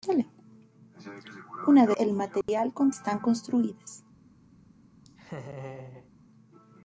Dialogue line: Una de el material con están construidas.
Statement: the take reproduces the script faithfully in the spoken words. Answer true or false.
true